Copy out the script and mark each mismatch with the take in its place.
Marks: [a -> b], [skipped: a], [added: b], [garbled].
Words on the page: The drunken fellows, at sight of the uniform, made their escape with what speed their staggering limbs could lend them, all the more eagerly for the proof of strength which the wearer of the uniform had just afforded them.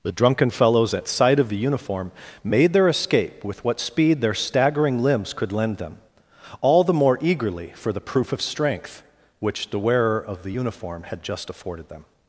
The drunken fellows, at sight of the uniform, made their escape with what speed their staggering limbs could lend them, all the more eagerly for the proof of strength which the wearer of the uniform had just afforded them.